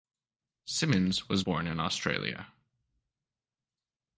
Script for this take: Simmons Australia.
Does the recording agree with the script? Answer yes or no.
no